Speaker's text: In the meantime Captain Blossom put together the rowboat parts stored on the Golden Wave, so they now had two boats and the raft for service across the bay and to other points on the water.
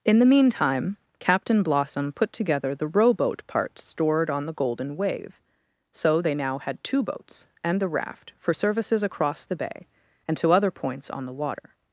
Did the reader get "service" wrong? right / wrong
wrong